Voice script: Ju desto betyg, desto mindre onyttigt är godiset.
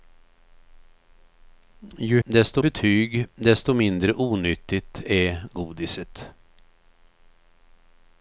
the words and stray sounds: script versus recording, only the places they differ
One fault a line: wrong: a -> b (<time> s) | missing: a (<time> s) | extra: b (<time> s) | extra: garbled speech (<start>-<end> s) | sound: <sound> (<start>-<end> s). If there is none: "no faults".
no faults